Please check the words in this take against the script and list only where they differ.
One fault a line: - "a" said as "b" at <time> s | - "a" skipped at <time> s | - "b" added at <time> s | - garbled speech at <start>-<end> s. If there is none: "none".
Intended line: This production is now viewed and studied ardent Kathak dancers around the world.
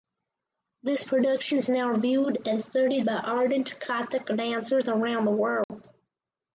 - "by" added at 3.0 s